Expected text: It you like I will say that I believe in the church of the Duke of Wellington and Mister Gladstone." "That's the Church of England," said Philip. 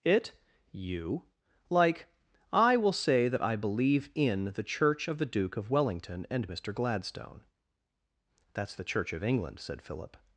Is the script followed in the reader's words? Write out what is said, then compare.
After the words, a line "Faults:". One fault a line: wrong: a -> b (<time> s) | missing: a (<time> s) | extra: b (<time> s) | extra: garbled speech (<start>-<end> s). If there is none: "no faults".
It you like I will say that I believe in the church of the Duke of Wellington and Mister Gladstone." "That's the Church of England," said Philip.
Faults:
no faults